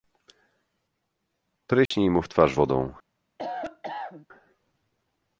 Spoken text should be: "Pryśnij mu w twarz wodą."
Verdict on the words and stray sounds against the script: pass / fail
fail